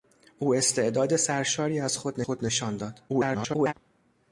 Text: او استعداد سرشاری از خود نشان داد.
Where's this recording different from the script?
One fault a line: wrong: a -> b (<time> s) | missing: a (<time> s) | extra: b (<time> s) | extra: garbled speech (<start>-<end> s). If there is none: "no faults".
extra: خود (2.2 s)
extra: garbled speech (3.1-3.7 s)